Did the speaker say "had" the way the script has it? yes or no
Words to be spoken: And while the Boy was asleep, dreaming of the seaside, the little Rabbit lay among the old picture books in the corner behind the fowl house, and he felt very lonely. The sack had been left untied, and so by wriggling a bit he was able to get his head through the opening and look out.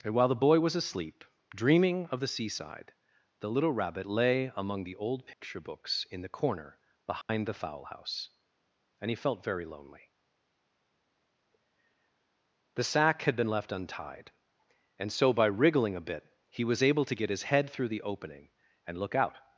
yes